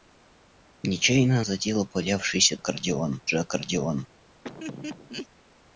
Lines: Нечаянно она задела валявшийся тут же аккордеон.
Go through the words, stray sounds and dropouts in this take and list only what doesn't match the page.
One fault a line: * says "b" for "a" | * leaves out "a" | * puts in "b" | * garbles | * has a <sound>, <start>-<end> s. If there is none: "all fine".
* leaves out "она"
* says "аккордеон" for "тут"
* has a laugh, 4.4-5.3 s